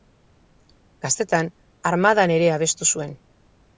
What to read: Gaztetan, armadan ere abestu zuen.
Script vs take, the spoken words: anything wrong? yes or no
no